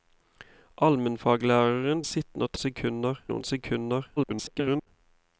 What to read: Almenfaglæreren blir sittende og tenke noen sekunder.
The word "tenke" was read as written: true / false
false